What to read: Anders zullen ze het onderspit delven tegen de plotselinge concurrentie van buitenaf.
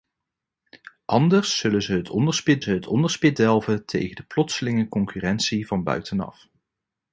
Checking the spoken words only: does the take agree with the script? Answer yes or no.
no